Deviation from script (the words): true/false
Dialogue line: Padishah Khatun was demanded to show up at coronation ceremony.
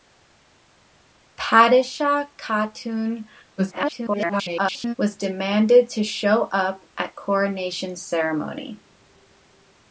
true